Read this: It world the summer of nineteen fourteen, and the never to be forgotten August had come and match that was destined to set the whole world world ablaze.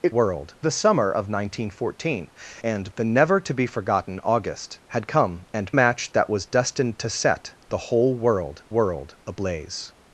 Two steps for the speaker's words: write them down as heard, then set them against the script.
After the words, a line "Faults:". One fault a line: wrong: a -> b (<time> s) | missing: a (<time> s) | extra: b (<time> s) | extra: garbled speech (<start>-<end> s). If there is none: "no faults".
It world the summer of nineteen fourteen, and the never to be forgotten August had come and match that was destined to set the whole world world ablaze.
Faults:
no faults